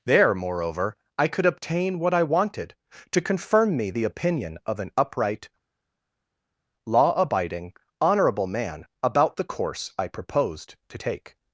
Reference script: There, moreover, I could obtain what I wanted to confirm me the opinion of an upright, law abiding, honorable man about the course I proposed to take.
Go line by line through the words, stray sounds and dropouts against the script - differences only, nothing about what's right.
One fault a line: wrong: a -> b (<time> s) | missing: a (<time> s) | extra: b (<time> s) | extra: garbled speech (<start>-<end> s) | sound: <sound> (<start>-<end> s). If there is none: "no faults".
no faults